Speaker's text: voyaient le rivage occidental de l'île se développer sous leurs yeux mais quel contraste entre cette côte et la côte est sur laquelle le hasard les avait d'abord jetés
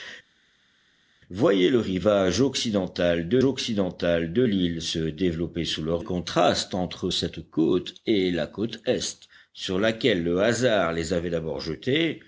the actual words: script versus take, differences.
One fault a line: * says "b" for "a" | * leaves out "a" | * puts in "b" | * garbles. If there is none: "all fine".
* puts in "occidental de"
* leaves out "yeux mais quel"